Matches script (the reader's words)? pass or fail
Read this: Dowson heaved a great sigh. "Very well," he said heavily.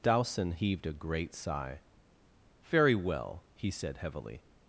pass